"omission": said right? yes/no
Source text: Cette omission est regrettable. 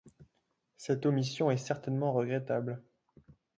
yes